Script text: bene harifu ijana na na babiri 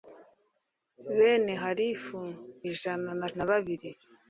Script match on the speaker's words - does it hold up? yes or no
yes